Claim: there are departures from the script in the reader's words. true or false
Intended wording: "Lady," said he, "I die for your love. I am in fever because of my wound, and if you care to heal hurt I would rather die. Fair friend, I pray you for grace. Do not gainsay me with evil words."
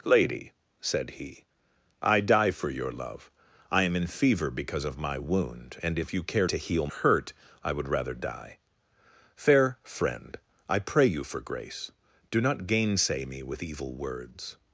false